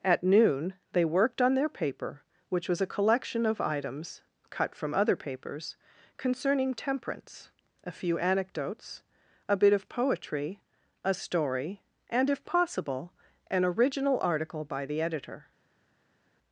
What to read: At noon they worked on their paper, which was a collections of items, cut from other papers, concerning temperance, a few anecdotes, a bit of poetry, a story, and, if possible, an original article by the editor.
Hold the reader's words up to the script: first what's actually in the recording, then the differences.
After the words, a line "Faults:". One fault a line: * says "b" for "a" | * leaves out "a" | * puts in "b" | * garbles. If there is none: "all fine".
At noon they worked on their paper, which was a collection of items, cut from other papers, concerning temperance, a few anecdotes, a bit of poetry, a story, and, if possible, an original article by the editor.
Faults:
* says "collection" for "collections"